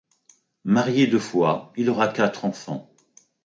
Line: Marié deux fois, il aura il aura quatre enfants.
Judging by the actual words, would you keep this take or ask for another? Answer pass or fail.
fail